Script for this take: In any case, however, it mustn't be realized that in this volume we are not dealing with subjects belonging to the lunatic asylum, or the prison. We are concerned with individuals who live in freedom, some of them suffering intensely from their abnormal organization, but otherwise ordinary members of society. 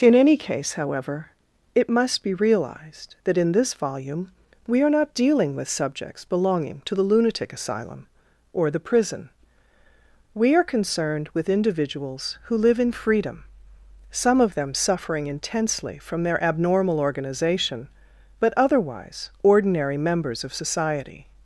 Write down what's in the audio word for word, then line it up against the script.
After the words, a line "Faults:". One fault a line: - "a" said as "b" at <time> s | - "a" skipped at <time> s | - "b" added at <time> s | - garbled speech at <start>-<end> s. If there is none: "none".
In any case, however, it must be realized that in this volume we are not dealing with subjects belonging to the lunatic asylum, or the prison. We are concerned with individuals who live in freedom, some of them suffering intensely from their abnormal organization, but otherwise ordinary members of society.
Faults:
- "mustn't" said as "must" at 1.9 s